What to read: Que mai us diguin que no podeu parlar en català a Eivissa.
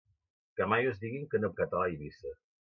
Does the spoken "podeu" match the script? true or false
false